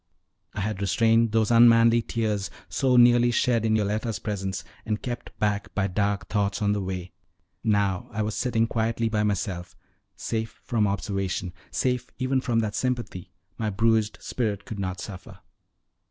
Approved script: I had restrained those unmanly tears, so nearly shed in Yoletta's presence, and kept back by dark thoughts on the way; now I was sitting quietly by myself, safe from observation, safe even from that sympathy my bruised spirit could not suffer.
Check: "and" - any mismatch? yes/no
no